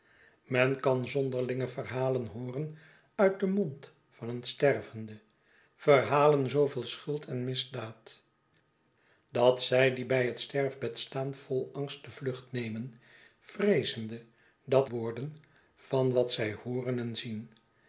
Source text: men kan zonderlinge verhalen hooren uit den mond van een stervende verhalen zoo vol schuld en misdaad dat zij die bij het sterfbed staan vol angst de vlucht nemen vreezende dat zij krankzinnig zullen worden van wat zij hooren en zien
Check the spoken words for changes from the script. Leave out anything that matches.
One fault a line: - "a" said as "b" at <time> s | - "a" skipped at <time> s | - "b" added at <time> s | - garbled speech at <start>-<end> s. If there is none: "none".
- "zij krankzinnig zullen" skipped at 14.9 s